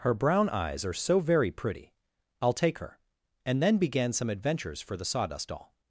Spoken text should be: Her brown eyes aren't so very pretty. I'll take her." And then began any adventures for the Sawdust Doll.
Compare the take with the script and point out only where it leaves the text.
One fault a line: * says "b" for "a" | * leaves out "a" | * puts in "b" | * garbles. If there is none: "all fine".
* says "are" for "aren't"
* says "some" for "any"